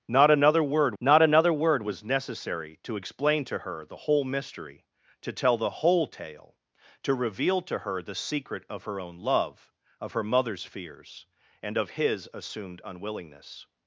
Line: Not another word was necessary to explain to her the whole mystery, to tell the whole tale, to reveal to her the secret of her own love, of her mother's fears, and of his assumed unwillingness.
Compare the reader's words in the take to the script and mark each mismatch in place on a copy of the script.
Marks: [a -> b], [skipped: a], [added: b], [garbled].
Not another word [added: not another word] was necessary to explain to her the whole mystery, to tell the whole tale, to reveal to her the secret of her own love, of her mother's fears, and of his assumed unwillingness.